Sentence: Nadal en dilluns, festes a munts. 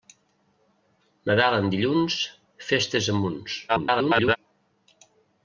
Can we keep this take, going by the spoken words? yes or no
no